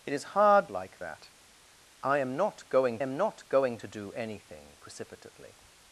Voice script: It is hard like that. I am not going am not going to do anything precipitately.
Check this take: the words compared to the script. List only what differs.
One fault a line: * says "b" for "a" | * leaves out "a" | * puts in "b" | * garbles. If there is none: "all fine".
all fine